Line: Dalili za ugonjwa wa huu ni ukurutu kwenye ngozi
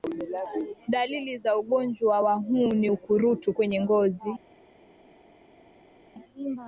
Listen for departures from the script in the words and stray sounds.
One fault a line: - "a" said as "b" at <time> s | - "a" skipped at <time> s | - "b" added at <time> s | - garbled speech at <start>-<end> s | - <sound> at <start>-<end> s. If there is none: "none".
none